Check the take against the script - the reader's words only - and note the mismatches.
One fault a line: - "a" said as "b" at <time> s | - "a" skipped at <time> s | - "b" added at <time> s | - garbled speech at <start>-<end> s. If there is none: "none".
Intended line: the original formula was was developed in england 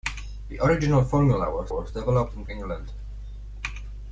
none